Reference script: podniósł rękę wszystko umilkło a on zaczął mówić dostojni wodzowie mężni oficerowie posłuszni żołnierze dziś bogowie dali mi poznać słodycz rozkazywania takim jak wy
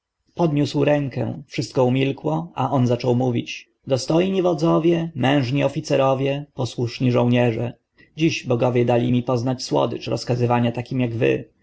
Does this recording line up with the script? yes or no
yes